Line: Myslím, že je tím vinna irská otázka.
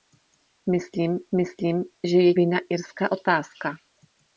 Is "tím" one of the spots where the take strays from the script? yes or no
yes